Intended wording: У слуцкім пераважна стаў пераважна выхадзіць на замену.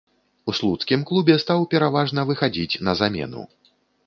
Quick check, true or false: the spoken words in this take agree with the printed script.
false